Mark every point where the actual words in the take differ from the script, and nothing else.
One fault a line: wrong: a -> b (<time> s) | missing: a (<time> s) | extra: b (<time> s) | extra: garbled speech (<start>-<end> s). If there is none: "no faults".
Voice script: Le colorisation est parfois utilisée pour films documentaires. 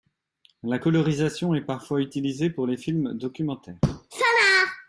wrong: Le -> La (0.6 s)
extra: les (2.7 s)